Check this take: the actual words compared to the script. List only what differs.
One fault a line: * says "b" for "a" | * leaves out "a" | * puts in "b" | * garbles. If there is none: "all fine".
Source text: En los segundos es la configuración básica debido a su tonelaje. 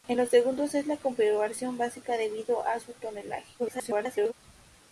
* garbles